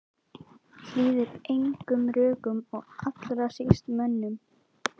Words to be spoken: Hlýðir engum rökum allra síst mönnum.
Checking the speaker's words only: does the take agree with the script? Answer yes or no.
no